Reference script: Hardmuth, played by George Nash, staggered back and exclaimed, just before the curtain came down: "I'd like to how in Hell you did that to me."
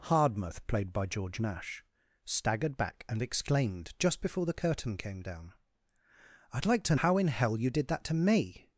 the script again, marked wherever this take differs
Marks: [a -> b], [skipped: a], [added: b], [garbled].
Hardmuth, played by George Nash, staggered back and exclaimed, just before the curtain came down: "I'd like to how in Hell you did that to me."